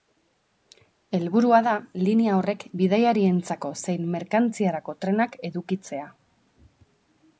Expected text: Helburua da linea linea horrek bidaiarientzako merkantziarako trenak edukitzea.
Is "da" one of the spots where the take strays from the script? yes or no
no